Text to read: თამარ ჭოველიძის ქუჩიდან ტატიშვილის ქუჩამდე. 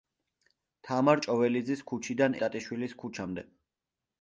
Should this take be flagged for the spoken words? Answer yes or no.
no